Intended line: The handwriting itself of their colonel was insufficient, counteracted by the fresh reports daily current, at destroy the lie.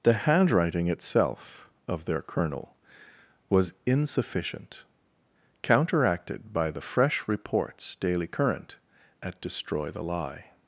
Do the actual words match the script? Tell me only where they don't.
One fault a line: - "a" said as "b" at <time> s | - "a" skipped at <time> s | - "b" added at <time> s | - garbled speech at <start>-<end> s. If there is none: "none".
none